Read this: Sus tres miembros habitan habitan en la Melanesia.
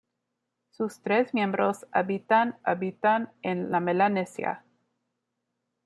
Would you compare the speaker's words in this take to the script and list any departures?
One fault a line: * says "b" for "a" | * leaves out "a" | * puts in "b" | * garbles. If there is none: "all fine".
all fine